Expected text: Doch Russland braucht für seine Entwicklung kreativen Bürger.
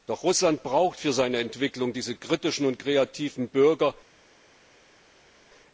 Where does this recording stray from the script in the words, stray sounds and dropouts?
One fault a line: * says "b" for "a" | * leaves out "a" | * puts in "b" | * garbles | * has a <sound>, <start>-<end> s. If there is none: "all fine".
* puts in "diese kritischen und"